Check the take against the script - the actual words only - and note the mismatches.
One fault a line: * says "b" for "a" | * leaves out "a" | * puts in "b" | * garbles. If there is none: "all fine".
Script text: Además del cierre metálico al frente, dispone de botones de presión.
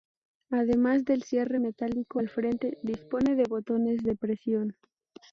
all fine